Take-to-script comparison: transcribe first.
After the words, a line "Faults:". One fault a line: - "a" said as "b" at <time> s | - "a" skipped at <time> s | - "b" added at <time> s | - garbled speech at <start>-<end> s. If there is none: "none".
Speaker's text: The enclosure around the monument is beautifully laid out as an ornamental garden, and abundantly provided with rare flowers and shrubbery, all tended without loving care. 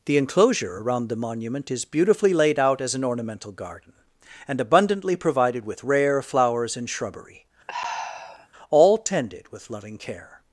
The enclosure around the monument is beautifully laid out as an ornamental garden, and abundantly provided with rare flowers and shrubbery, all tended with loving care.
Faults:
- "without" said as "with" at 9.5 s